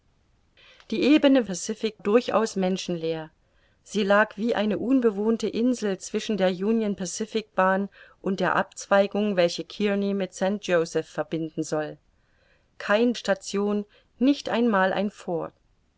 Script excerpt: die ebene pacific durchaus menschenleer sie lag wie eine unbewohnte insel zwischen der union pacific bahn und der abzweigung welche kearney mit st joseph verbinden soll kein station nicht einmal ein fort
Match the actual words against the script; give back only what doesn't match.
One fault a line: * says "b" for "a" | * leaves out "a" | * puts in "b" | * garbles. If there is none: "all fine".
all fine